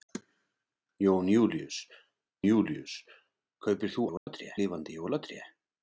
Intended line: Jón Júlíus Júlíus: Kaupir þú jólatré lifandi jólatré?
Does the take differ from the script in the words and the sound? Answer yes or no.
yes